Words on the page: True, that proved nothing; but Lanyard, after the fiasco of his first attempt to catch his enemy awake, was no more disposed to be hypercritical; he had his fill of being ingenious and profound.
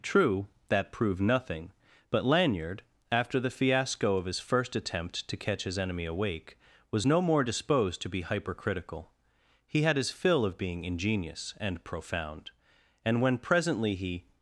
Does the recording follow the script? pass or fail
fail